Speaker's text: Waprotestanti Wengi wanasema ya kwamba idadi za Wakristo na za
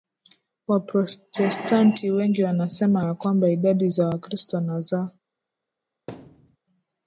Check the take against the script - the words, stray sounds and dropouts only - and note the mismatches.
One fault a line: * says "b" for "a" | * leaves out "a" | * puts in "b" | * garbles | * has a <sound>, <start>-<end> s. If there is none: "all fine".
* has a thud, 6.1-6.6 s